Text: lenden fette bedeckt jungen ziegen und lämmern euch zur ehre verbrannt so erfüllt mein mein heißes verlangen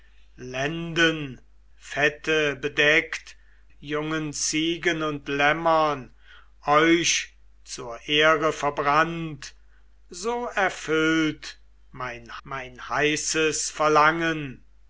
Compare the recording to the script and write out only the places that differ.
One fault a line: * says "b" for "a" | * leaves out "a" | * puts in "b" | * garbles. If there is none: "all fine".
all fine